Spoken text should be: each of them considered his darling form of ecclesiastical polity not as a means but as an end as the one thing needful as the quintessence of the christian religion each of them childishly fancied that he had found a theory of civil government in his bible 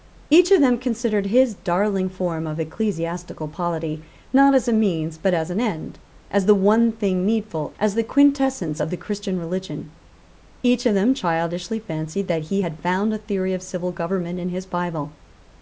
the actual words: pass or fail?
pass